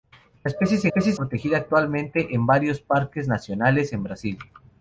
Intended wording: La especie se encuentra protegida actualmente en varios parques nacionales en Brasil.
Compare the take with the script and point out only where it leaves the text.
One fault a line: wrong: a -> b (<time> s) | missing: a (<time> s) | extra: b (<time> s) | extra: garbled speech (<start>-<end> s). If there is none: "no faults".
wrong: encuentra -> especie (0.8 s)